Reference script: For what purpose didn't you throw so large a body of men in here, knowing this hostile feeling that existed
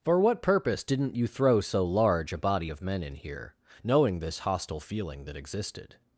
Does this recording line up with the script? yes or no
yes